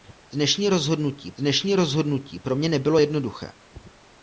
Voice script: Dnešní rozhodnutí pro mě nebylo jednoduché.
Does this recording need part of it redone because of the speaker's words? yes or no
yes